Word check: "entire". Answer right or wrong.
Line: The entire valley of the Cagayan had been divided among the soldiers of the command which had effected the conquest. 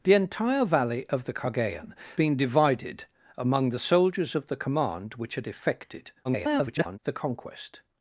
right